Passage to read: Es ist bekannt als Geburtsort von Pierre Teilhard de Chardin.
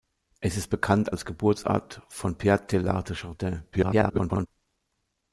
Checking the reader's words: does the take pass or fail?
fail